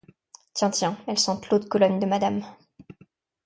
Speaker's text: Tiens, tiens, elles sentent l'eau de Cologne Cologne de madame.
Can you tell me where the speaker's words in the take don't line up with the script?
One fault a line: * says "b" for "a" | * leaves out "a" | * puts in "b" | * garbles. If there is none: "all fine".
* leaves out "Cologne"